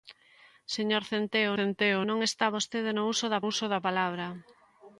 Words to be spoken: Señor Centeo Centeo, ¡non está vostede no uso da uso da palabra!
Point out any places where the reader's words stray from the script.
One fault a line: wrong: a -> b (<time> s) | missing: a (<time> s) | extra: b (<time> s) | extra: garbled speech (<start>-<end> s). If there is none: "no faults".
no faults